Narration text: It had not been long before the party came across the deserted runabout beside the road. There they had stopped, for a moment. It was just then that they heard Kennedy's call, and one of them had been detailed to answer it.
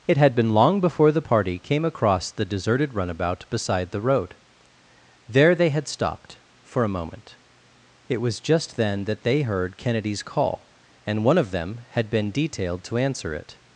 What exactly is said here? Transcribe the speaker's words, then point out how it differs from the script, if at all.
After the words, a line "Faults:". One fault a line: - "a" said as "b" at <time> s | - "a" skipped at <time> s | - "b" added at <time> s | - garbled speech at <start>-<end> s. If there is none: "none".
It had been long before the party came across the deserted runabout beside the road. There they had stopped, for a moment. It was just then that they heard Kennedy's call, and one of them had been detailed to answer it.
Faults:
- "not" skipped at 0.3 s